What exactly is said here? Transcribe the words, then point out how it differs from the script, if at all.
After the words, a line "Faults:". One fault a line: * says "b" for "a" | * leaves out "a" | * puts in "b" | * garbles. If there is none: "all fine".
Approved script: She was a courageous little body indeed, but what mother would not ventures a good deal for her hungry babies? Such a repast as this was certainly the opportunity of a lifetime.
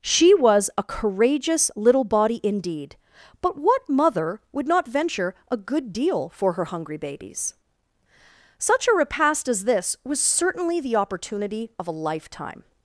She was a courageous little body indeed, but what mother would not venture a good deal for her hungry babies? Such a repast as this was certainly the opportunity of a lifetime.
Faults:
* says "venture" for "ventures"